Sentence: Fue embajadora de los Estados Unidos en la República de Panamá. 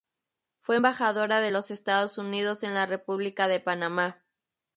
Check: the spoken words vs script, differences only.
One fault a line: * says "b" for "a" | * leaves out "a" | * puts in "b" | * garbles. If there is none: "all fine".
all fine